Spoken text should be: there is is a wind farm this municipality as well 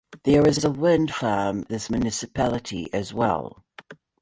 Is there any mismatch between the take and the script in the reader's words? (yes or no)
no